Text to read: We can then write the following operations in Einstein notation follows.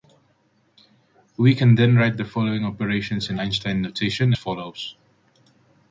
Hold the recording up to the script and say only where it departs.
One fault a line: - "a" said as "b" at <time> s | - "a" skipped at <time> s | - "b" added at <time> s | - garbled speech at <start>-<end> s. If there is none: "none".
none